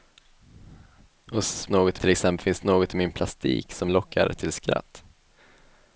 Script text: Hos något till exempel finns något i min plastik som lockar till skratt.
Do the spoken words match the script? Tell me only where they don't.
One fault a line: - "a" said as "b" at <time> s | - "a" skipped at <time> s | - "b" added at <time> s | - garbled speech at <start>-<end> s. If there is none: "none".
none